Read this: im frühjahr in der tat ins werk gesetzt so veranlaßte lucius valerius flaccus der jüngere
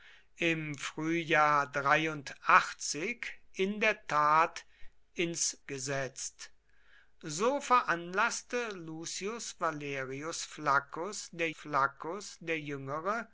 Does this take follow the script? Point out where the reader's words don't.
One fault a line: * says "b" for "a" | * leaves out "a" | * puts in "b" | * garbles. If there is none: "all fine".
* leaves out "werk"
* puts in "flaccus der"